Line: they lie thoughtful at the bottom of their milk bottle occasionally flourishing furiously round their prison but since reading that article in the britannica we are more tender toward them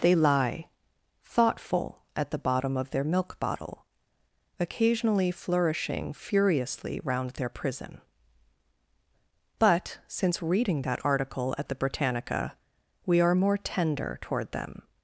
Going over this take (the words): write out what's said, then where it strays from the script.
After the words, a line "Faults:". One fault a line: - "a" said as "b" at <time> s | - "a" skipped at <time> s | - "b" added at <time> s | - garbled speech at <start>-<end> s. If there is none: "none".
they lie thoughtful at the bottom of their milk bottle occasionally flourishing furiously round their prison but since reading that article at the britannica we are more tender toward them
Faults:
- "in" said as "at" at 11.6 s